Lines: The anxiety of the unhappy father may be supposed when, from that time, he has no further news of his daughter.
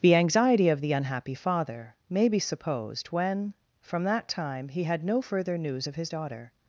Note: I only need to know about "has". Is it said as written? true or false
false